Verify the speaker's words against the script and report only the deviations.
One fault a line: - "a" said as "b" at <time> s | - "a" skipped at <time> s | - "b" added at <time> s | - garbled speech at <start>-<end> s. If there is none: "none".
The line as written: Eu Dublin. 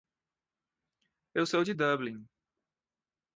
- "sou de" added at 1.4 s